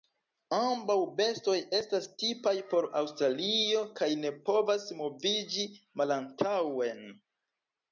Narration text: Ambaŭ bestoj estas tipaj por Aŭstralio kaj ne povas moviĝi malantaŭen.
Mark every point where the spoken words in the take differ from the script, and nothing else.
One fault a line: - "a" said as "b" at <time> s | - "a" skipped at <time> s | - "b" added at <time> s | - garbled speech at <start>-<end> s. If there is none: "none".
none